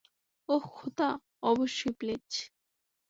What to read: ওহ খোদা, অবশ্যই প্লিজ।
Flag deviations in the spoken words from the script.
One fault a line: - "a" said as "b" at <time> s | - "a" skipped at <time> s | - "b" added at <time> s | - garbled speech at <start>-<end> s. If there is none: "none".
none